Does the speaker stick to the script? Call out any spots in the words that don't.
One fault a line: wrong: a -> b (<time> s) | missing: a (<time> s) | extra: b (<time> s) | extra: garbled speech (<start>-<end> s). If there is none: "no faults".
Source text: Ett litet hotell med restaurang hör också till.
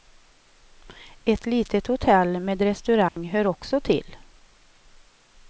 no faults